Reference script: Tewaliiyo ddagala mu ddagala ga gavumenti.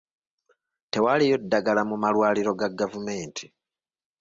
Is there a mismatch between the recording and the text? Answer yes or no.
yes